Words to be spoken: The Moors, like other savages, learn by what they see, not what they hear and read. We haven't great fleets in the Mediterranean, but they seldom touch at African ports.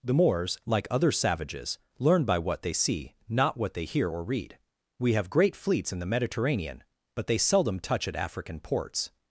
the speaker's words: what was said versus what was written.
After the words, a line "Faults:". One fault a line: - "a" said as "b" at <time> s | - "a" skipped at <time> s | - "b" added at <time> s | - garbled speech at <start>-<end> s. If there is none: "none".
The Moors, like other savages, learn by what they see, not what they hear or read. We have great fleets in the Mediterranean, but they seldom touch at African ports.
Faults:
- "and" said as "or" at 4.1 s
- "haven't" said as "have" at 5.1 s